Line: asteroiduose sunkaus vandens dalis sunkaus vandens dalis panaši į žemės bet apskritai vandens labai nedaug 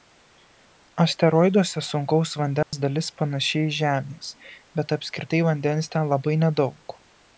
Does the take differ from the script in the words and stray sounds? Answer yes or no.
yes